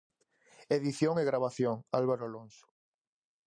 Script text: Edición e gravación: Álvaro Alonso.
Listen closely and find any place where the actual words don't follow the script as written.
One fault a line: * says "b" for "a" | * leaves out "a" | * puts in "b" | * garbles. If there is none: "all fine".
all fine